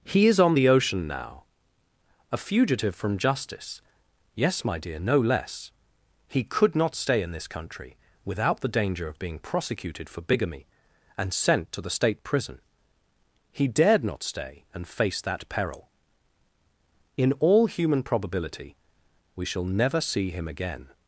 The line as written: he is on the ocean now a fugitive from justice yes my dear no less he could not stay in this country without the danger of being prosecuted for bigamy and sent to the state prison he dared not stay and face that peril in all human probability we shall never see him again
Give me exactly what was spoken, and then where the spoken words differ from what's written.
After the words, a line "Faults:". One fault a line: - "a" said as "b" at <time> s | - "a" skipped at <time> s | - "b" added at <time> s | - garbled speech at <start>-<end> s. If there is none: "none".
he is on the ocean now a fugitive from justice yes my dear no less he could not stay in this country without the danger of being prosecuted for bigamy and sent to the state prison he dared not stay and face that peril in all human probability we shall never see him again
Faults:
none